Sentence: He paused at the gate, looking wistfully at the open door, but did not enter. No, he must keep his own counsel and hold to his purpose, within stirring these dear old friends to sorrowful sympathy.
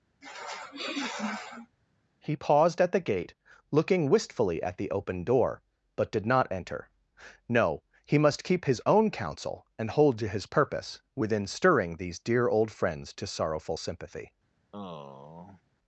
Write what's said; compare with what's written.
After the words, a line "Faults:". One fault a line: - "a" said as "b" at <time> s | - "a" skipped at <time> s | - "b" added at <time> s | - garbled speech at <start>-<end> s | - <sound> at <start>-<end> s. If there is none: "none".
He paused at the gate, looking wistfully at the open door, but did not enter. No, he must keep his own counsel and hold to his purpose, within stirring these dear old friends to sorrowful sympathy.
Faults:
- sniff at 0.2-1.8 s
- sigh at 14.7-15.6 s